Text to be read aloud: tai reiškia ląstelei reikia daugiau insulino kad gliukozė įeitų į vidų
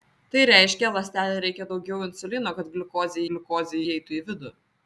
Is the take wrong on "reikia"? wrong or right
right